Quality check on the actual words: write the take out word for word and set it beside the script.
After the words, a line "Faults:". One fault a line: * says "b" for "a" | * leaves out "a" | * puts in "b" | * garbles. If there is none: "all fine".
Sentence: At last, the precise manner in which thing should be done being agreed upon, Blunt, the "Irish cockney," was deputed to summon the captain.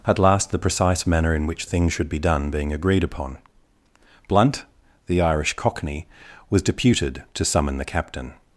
At last, the precise manner in which thing should be done being agreed upon, Blunt, the "Irish cockney," was deputed to summon the captain.
Faults:
all fine